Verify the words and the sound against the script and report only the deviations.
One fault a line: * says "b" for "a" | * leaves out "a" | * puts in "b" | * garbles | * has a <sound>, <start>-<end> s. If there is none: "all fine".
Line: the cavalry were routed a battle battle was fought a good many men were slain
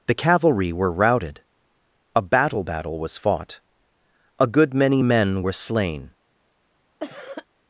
* has a cough, 7.0-7.5 s